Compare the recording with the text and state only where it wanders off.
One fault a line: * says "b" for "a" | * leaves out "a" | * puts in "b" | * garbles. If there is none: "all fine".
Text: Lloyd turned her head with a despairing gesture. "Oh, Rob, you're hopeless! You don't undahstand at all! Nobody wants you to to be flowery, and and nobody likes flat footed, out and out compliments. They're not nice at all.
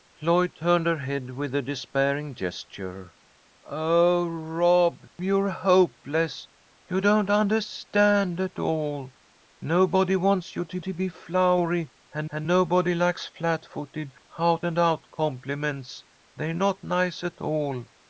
all fine